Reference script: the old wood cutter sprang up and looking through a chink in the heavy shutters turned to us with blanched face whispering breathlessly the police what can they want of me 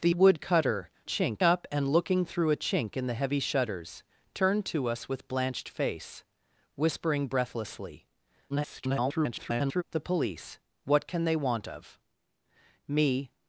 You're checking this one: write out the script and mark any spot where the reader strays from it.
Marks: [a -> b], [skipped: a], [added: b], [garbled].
the [skipped: old] wood cutter [sprang -> chink] up and looking through a chink in the heavy shutters turned to us with blanched face whispering breathlessly [garbled] the police what can they want of me